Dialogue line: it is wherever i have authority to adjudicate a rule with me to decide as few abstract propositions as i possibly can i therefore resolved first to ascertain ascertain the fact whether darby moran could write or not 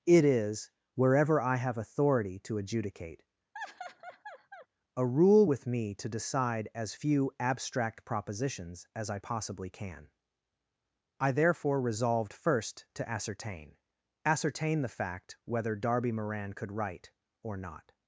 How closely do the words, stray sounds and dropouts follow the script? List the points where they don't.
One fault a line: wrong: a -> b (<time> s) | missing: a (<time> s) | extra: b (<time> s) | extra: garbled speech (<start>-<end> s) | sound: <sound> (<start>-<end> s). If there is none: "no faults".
sound: laugh (3.5-4.7 s)